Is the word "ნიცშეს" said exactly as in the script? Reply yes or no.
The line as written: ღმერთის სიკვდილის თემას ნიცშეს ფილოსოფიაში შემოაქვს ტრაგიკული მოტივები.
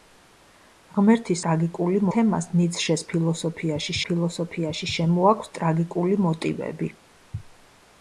yes